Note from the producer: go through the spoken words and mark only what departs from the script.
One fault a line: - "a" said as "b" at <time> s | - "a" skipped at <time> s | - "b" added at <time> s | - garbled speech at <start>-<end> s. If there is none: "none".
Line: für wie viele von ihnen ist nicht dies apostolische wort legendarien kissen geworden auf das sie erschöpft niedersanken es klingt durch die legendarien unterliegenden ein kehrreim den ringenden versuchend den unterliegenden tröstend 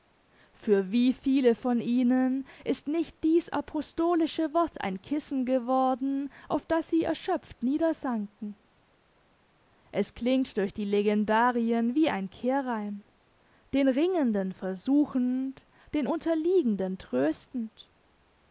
- "legendarien" said as "ein" at 4.8 s
- "unterliegenden" said as "wie" at 11.9 s